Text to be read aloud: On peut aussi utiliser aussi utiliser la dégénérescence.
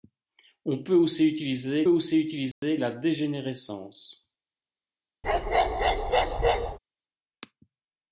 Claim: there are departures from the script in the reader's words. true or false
false